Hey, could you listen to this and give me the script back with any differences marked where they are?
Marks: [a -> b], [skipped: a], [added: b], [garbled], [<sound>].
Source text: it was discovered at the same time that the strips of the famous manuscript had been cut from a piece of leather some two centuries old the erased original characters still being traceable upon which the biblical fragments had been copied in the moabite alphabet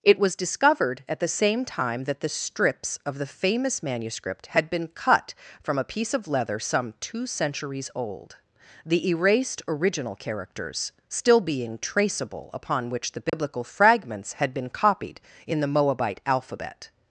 it was discovered at the same time that the strips of the famous manuscript had been cut from a piece of leather some two centuries old the erased original characters still being traceable upon which the biblical [dropout] fragments had been copied in the moabite alphabet